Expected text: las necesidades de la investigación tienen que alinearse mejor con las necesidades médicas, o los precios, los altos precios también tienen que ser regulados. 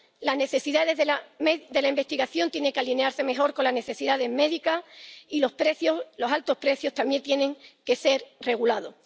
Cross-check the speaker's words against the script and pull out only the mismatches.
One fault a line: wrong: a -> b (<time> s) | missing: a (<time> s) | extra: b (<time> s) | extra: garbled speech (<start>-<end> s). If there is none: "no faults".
wrong: o -> y (5.3 s)